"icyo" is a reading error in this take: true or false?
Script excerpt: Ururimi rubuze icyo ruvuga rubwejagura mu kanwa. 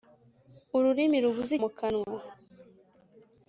true